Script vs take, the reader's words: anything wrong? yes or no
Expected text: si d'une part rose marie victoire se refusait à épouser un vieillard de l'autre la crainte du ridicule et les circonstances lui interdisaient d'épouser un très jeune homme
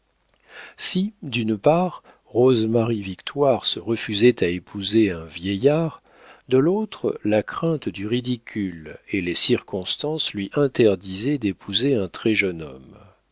no